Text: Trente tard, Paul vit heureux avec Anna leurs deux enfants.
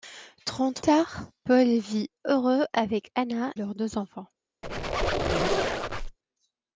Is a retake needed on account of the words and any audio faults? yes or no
yes